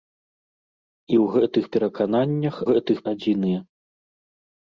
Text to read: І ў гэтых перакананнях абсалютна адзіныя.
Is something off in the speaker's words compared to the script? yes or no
yes